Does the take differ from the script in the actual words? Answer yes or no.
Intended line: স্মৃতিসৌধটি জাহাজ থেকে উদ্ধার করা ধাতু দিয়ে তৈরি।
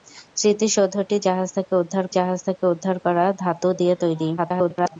yes